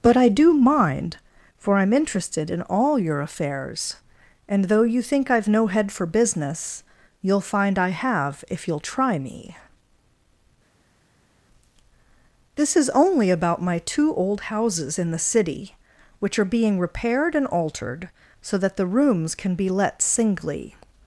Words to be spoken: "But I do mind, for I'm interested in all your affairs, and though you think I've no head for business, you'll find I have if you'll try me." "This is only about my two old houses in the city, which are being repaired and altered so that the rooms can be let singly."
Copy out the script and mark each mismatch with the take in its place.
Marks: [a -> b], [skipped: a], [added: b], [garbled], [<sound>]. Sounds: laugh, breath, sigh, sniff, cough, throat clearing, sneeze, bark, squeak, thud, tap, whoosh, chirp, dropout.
"But I do mind, for I'm interested in all your affairs, and though you think I've no head for business, you'll find I have if you'll try me." "This is only about my two old houses in the city, which are being repaired and altered so that the rooms can be let singly."